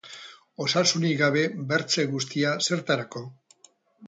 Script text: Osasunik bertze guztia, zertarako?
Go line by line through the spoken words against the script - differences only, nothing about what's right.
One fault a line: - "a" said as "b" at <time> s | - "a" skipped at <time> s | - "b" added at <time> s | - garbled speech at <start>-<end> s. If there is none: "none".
- "gabe" added at 1.2 s